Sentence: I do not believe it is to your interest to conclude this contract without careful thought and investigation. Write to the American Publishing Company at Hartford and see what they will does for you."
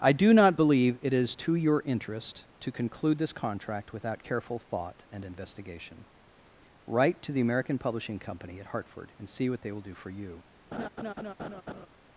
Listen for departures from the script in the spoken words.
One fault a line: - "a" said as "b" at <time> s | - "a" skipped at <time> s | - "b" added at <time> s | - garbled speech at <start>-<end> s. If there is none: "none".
- "does" said as "do" at 9.8 s